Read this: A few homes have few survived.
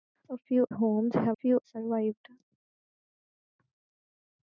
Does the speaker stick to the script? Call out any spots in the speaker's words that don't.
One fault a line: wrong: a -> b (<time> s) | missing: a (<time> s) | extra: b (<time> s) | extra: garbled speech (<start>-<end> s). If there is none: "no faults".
no faults